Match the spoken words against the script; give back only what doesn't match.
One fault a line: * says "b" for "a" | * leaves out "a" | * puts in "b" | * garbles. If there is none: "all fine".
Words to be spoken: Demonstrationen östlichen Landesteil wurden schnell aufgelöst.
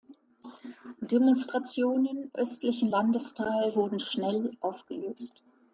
all fine